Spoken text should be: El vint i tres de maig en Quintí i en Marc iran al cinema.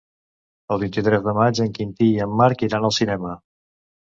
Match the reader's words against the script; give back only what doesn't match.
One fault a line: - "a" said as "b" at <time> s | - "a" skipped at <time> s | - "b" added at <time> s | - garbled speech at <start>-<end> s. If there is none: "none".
none